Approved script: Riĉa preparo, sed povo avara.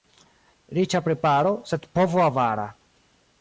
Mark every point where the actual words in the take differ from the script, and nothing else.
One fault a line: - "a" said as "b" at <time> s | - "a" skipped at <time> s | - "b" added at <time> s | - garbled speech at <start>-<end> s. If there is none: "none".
none